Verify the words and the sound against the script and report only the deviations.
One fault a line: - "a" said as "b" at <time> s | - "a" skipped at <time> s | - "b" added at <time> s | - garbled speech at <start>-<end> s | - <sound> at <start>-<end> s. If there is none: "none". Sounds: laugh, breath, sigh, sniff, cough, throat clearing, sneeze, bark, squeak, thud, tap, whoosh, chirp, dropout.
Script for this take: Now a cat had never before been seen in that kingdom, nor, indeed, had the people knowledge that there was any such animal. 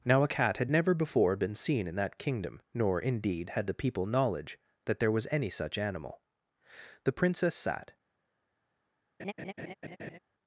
- "The princess sat" added at 7.0 s
- laugh at 9.2-10.2 s